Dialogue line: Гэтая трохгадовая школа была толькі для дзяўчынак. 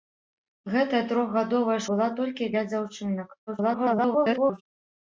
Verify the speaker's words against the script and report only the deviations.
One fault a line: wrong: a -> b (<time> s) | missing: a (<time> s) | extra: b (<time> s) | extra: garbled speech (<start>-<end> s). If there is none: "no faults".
missing: школа (1.8 s)
extra: garbled speech (3.5-4.6 s)